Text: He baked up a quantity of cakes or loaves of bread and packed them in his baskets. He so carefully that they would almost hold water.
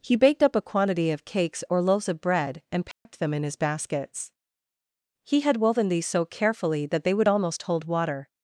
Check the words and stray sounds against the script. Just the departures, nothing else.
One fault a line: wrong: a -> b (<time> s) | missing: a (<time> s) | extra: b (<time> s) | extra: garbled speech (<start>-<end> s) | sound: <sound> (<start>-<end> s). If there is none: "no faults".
sound: dropout (2.9-3.1 s)
extra: had woven these (5.4 s)